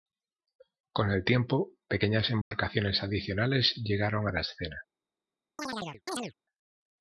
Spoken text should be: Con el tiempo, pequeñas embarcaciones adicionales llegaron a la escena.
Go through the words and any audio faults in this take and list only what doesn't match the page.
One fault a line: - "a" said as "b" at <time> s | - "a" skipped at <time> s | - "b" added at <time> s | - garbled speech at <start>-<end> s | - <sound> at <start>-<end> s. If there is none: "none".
- dropout at 2.4-2.5 s
- chirp at 5.6-6.3 s